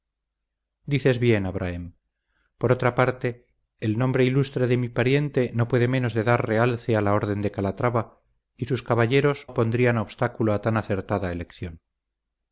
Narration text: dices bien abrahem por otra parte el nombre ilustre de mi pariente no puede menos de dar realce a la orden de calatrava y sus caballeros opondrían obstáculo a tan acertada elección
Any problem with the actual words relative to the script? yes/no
no